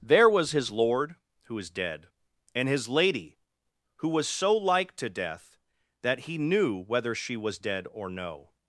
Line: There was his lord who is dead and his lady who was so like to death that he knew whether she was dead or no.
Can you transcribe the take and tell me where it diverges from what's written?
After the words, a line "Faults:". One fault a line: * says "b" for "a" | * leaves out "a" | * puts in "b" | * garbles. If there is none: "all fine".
There was his lord who is dead and his lady who was so like to death that he knew whether she was dead or no.
Faults:
all fine